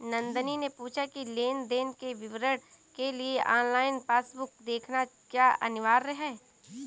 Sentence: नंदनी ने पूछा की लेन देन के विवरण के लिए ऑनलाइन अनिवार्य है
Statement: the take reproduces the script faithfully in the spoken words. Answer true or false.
false